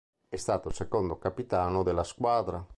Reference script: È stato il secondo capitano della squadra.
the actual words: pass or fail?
pass